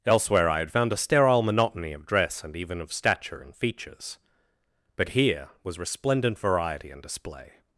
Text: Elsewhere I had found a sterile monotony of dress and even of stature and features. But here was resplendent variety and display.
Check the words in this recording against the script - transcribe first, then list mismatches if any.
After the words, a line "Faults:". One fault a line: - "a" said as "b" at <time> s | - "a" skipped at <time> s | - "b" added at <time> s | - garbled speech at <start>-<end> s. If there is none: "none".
Elsewhere I had found a sterile monotony of dress and even of stature and features. But here was resplendent variety and display.
Faults:
none